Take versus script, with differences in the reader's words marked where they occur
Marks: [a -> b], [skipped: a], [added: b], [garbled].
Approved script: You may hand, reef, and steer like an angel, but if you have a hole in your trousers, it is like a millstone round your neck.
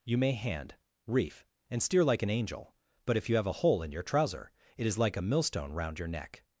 You may hand, reef, and steer like an angel, but if you have a hole in your [trousers, -> trouser] it is like a millstone round your neck.